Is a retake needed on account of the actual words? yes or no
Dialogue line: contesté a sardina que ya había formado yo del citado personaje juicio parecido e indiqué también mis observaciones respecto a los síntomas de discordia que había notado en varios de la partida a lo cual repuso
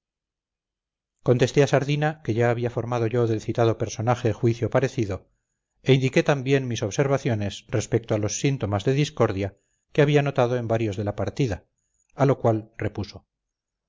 no